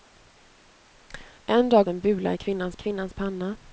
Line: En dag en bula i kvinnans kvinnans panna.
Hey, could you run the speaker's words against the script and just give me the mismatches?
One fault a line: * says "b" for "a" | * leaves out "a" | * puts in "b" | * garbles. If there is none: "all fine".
all fine